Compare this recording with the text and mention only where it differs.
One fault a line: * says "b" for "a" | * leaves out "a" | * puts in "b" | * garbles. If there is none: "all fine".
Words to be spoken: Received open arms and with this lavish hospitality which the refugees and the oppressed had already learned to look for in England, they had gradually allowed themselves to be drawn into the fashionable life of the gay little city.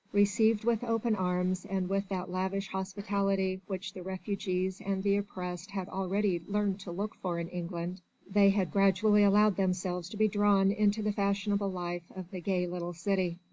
* puts in "with"
* says "that" for "this"